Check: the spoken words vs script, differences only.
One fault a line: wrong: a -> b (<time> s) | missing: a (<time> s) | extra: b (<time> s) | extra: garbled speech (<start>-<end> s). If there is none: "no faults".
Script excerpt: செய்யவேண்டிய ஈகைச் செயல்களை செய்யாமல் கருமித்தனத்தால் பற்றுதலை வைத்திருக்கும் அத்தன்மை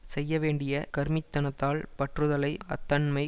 missing: ஈகைச் செயல்களை செய்யாமல் (0.7 s)
missing: வைத்திருக்கும் (2.6 s)